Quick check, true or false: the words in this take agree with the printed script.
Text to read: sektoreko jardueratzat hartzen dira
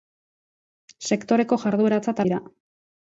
false